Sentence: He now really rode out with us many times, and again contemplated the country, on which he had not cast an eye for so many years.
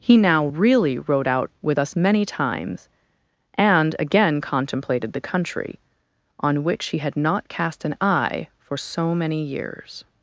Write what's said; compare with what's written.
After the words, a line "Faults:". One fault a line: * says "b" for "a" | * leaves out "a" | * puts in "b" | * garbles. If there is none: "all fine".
He now really rode out with us many times, and again contemplated the country, on which he had not cast an eye for so many years.
Faults:
all fine